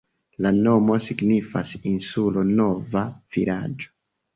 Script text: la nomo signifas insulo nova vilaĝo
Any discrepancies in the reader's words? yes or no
no